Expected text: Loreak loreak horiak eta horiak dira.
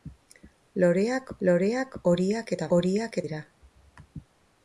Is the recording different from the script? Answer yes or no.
no